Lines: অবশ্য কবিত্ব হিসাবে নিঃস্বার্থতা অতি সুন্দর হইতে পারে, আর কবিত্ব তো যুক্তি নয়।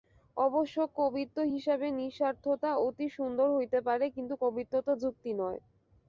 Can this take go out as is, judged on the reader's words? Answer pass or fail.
fail